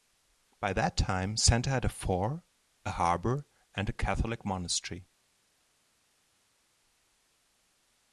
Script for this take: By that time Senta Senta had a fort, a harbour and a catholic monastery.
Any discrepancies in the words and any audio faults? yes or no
yes